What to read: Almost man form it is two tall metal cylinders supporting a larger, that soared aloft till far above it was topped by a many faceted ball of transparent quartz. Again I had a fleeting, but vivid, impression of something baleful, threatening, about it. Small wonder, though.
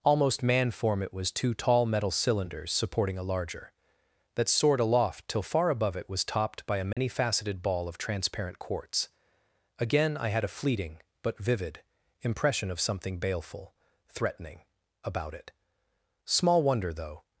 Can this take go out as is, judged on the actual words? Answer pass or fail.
fail